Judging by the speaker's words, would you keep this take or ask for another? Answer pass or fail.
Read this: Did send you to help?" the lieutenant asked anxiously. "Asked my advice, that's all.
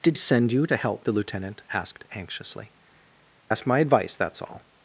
pass